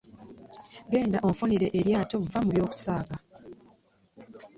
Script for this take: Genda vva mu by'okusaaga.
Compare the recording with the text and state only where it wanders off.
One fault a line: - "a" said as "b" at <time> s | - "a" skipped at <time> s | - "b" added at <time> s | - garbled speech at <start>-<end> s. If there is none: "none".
- "onfunire eryato" added at 1.3 s